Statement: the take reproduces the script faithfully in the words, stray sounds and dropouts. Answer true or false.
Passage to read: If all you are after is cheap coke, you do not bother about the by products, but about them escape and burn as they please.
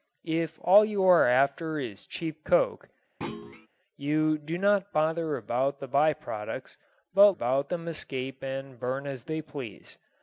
false